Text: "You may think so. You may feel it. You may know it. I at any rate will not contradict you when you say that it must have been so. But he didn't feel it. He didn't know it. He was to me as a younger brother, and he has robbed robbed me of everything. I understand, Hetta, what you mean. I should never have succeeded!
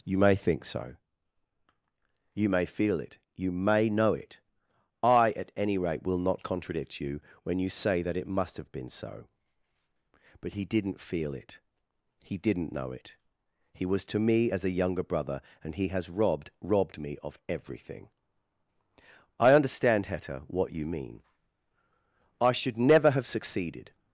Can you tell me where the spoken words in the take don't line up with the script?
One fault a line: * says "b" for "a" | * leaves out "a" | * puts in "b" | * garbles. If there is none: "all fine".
all fine